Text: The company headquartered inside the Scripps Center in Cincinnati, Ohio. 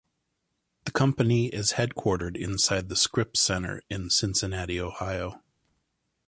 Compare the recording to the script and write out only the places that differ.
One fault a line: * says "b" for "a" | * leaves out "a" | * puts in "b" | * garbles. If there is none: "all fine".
* puts in "is"